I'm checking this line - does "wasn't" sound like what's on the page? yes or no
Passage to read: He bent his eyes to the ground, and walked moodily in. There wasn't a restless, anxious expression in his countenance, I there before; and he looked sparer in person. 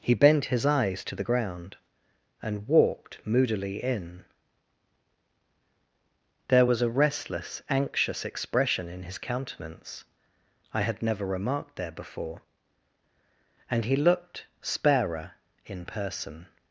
no